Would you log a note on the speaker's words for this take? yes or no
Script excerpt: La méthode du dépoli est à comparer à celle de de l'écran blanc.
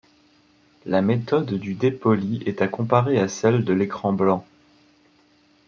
yes